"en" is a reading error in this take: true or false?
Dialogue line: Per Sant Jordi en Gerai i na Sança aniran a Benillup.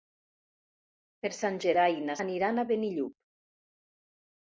true